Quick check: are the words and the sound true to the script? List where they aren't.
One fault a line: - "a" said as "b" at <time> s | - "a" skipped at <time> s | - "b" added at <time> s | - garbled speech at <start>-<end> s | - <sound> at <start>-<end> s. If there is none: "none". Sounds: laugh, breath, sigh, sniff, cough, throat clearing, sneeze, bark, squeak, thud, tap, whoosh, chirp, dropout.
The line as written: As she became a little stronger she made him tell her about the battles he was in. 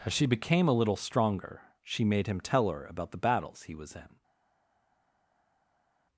none